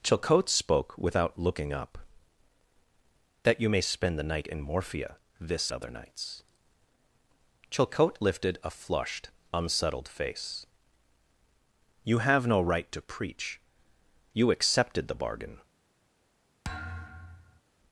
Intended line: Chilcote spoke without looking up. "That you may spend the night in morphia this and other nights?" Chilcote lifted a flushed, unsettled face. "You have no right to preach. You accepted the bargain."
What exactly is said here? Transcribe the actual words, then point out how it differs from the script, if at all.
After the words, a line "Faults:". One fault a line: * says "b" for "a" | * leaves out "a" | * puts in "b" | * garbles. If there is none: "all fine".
Chilcote spoke without looking up. "That you may spend the night in morphia this other nights?" Chilcote lifted a flushed, unsettled face. "You have no right to preach. You accepted the bargain."
Faults:
* leaves out "and"